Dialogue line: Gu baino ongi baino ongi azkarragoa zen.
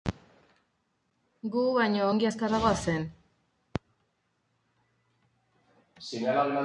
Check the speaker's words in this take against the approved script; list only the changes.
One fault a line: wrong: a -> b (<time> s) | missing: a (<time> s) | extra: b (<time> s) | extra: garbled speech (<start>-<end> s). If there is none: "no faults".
missing: baino ongi (2.3 s)